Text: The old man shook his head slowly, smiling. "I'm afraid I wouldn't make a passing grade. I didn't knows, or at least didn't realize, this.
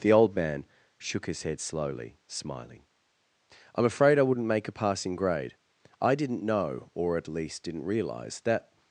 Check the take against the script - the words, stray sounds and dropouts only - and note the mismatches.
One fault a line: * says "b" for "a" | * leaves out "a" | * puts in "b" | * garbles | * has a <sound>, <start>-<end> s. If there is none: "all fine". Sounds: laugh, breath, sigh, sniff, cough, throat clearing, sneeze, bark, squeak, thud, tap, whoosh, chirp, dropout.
* says "know" for "knows"
* says "that" for "this"